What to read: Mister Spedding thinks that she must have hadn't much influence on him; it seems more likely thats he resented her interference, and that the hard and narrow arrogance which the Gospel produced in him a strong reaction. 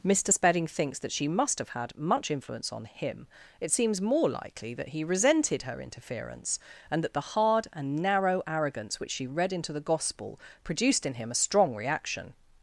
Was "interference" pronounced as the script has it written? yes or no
yes